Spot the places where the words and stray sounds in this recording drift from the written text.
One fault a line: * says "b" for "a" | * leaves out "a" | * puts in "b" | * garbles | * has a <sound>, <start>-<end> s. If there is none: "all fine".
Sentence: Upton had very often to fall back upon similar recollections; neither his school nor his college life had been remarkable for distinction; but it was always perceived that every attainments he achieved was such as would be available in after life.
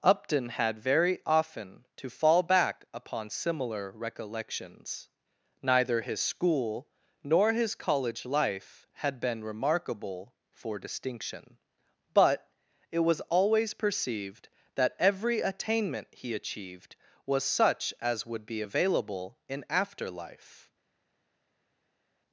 * says "attainment" for "attainments"